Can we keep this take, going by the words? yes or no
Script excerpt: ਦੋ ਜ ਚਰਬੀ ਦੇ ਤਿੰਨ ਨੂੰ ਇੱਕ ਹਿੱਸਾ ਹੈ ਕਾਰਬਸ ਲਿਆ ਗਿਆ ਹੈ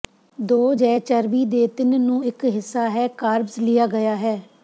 yes